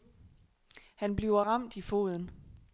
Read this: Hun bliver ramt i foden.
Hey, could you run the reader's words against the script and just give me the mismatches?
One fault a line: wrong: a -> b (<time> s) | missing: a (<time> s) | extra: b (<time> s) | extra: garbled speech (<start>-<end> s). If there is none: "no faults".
wrong: Hun -> Han (0.9 s)